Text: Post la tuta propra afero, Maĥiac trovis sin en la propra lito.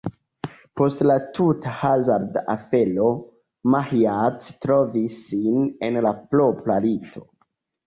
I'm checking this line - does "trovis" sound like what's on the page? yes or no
yes